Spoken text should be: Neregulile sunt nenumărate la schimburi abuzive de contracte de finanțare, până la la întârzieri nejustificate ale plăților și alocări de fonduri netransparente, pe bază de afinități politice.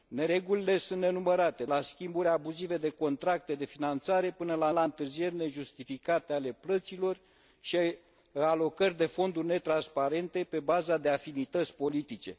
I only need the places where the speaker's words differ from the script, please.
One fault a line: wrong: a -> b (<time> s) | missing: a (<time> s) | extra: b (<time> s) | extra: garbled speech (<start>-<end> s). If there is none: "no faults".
no faults